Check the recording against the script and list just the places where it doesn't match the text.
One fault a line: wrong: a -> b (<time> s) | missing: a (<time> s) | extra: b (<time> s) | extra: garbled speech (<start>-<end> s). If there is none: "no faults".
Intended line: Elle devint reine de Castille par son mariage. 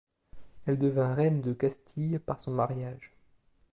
no faults